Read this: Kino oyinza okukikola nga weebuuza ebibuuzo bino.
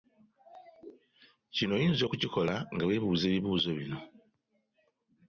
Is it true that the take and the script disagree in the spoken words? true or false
false